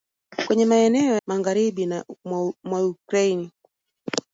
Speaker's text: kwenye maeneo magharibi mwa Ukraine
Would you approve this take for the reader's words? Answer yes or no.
yes